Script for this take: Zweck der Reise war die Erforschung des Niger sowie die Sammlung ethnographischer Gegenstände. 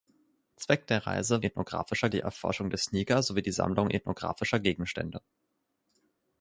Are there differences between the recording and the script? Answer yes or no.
yes